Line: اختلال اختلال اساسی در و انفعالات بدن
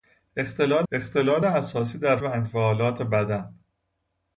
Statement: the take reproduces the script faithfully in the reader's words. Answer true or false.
true